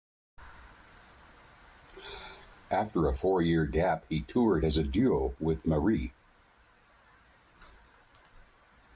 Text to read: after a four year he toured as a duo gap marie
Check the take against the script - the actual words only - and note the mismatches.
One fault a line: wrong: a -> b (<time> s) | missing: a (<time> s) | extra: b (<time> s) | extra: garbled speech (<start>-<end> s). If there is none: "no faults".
extra: gap (3.6 s)
wrong: gap -> with (5.4 s)